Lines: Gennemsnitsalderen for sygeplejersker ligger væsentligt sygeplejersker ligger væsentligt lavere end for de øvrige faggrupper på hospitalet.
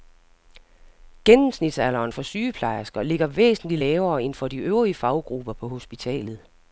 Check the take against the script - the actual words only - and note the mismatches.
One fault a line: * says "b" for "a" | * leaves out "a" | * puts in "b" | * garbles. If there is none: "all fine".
* leaves out "sygeplejersker ligger væsentligt"